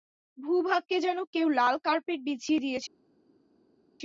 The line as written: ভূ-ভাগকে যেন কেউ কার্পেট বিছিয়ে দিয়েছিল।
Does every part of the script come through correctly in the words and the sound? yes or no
no